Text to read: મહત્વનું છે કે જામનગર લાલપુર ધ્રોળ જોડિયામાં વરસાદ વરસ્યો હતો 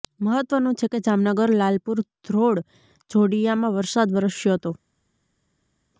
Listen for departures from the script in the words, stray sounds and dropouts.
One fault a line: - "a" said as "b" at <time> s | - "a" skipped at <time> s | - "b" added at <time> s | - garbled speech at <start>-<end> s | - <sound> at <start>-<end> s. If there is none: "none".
none